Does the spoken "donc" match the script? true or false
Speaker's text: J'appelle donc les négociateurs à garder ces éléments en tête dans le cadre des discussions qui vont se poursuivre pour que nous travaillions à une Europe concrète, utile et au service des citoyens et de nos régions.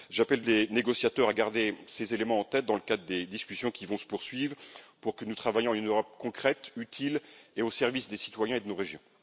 false